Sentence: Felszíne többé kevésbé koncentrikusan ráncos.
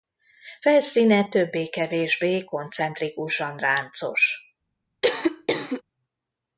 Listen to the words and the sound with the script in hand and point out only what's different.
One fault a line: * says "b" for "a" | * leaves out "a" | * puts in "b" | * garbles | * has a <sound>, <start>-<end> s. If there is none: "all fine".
* has a cough, 5.0-5.8 s